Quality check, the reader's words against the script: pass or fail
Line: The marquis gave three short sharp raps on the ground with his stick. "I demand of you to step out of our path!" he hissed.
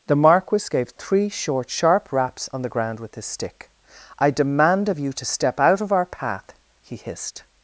pass